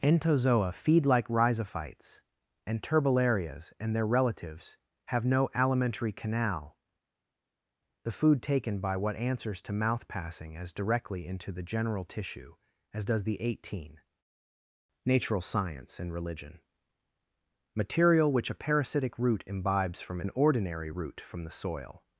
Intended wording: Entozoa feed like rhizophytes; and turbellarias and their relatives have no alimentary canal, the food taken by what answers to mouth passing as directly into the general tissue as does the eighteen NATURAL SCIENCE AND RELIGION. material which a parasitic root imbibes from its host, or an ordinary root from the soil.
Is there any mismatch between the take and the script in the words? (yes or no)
yes